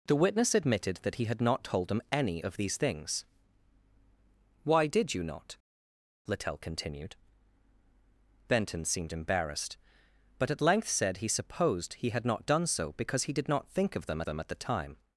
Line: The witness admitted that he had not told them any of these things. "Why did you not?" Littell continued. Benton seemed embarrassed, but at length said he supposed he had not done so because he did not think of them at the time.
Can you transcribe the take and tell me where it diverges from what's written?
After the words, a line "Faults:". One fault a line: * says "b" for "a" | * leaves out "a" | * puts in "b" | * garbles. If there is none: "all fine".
The witness admitted that he had not told them any of these things. "Why did you not?" Littell continued. Benton seemed embarrassed, but at length said he supposed he had not done so because he did not think of them them at the time.
Faults:
* puts in "them"